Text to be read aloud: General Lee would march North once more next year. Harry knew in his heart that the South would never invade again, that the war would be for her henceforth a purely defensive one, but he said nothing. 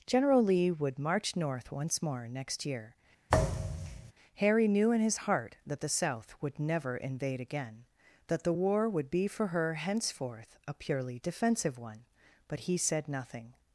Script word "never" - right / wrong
right